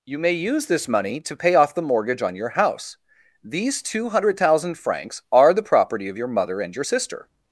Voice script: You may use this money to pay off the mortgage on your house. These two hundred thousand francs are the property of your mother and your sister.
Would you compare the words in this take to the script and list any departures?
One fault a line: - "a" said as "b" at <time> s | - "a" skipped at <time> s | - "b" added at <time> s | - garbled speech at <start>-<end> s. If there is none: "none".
none